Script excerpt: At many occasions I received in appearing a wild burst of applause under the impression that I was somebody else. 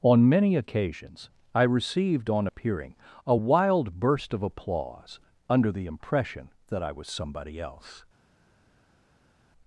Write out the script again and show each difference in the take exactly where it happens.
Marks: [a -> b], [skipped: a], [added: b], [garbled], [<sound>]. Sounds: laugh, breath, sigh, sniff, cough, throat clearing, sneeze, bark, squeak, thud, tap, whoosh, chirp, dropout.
[At -> On] many occasions I received [in -> on] appearing a wild burst of applause under the impression that I was somebody else.